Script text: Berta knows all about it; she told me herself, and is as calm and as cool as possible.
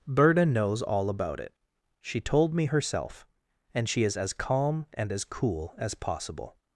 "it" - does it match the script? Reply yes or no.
yes